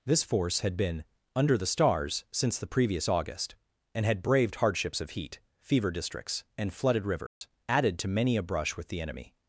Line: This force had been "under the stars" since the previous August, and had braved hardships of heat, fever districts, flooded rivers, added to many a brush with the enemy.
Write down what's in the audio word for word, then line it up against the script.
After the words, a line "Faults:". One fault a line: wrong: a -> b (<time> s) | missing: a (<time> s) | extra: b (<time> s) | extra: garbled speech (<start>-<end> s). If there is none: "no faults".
This force had been "under the stars" since the previous August, and had braved hardships of heat, fever districts, and flooded rivers, added to many a brush with the enemy.
Faults:
extra: and (6.6 s)